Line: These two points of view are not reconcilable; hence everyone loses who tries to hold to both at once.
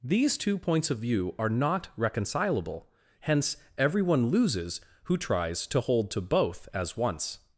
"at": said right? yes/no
no